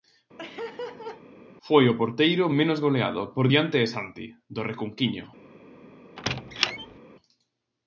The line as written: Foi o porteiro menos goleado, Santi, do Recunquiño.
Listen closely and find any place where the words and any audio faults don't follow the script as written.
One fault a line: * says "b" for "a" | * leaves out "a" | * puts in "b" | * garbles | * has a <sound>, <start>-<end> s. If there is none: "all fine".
* has a laugh, 0.4-1.2 s
* puts in "por diante de"
* has a squeak, 6.2-7.0 s